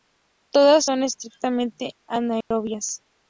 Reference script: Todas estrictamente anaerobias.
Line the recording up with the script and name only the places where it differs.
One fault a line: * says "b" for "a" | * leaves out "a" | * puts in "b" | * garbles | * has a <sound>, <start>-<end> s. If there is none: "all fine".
* puts in "son"
* has a dropout, 2.4-2.5 s